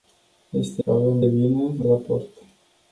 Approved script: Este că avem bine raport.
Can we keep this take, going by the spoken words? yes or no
yes